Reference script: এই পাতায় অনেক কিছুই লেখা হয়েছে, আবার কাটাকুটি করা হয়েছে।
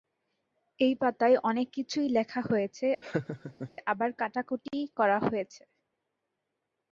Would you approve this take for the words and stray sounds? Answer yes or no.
no